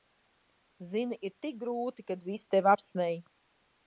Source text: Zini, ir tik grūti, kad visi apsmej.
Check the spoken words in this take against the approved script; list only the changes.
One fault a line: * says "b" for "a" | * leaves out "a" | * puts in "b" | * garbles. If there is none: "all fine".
* puts in "tevi"